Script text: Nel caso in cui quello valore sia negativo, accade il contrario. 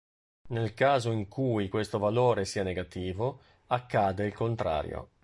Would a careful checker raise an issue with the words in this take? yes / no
yes